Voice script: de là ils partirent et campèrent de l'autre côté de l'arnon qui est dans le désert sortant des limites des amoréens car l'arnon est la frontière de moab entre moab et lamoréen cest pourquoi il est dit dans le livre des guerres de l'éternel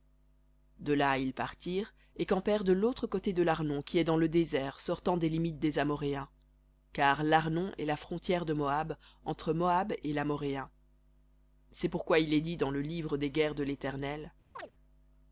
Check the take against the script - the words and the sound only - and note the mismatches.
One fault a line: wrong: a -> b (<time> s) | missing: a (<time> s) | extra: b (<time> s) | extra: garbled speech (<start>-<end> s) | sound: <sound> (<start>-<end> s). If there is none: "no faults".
sound: chirp (14.5-14.7 s)